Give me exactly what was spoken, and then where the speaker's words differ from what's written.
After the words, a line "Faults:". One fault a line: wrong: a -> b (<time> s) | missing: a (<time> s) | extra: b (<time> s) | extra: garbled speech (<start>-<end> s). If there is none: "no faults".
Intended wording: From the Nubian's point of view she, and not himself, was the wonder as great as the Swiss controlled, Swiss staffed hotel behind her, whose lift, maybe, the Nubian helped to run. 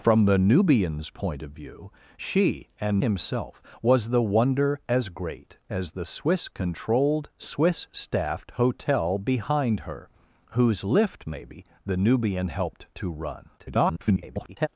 From the Nubian's point of view she, and himself, was the wonder as great as the Swiss controlled, Swiss staffed hotel behind her, whose lift, maybe, the Nubian helped to run. [garbled]
Faults:
missing: not (3.0 s)
extra: garbled speech (13.6-14.7 s)